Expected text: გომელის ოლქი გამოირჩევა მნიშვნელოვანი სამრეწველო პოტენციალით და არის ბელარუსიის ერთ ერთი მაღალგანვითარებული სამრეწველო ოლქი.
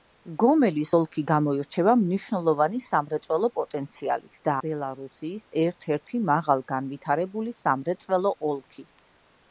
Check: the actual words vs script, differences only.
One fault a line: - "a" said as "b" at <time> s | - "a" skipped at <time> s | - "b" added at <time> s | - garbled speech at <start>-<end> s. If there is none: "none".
- "არის" skipped at 4.5 s